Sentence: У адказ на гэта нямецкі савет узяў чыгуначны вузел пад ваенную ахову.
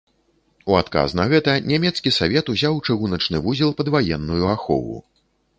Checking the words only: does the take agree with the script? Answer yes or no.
yes